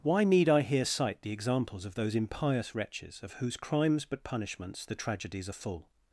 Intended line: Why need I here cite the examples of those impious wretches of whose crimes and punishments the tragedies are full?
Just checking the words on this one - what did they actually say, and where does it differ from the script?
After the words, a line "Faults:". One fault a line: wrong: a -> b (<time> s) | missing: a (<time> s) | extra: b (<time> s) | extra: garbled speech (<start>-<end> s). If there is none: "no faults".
Why need I here cite the examples of those impious wretches of whose crimes but punishments the tragedies are full?
Faults:
wrong: and -> but (4.0 s)